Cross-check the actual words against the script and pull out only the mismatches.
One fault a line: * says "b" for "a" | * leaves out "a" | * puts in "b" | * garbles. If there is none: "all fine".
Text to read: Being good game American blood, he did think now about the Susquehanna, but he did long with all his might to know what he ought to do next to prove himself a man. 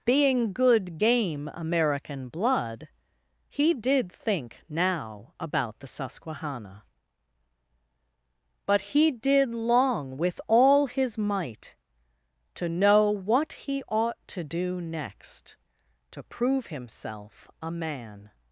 all fine